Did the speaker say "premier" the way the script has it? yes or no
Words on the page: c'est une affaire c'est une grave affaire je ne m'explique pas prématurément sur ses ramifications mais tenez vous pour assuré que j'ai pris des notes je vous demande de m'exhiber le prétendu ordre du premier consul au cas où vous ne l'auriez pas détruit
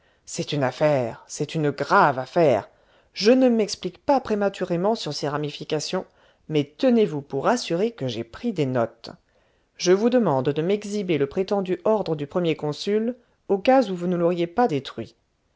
yes